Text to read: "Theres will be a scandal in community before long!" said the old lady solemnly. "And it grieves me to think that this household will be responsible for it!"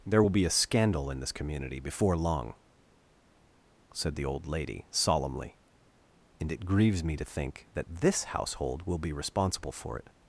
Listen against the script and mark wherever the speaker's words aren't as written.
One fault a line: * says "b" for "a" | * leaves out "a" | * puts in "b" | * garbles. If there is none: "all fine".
* says "There" for "Theres"
* puts in "this"